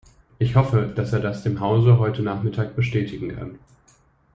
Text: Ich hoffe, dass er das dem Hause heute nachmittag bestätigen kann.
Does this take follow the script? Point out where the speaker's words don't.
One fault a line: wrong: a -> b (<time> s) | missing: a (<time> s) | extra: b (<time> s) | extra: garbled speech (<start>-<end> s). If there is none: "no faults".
no faults